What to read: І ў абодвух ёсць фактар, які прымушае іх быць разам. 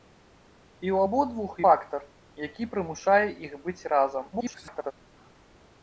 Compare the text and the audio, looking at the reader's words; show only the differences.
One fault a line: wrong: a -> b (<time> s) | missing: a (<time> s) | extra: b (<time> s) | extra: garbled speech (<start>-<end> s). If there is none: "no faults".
missing: ёсць (1.6 s)
extra: garbled speech (4.3-4.9 s)